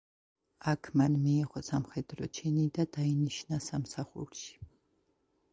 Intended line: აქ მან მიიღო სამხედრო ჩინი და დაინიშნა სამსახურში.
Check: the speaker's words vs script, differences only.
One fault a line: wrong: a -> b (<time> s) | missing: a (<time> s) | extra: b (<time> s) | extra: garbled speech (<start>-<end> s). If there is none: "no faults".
no faults